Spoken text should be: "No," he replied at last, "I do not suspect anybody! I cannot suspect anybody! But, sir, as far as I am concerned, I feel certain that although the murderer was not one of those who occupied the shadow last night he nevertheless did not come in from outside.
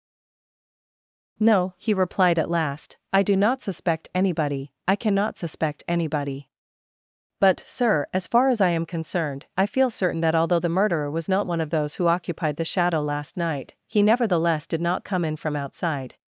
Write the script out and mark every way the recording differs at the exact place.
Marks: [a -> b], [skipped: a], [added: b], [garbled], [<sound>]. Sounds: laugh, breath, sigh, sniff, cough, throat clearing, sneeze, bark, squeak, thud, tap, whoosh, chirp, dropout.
"No," he replied at last, "I do not suspect anybody! I cannot suspect anybody! But, sir, as far as I am concerned, I feel certain that although the murderer was not one of those who occupied the shadow last night he nevertheless did not come in from outside.